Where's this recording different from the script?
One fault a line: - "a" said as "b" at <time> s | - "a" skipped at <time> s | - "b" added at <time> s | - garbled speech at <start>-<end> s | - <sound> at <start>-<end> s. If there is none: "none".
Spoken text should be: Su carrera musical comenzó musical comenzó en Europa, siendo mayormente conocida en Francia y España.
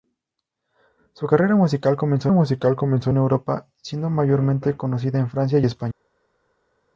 none